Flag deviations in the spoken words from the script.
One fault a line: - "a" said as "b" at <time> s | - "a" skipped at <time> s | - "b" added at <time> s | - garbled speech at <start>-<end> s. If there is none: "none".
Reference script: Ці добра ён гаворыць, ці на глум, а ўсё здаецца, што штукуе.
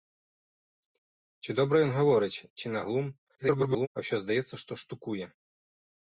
- garbled speech at 3.4-3.9 s